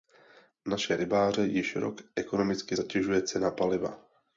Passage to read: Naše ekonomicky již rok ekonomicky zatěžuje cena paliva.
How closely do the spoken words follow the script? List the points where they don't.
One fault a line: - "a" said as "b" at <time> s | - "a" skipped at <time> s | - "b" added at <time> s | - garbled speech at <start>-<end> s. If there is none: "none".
- "ekonomicky" said as "rybáře" at 0.9 s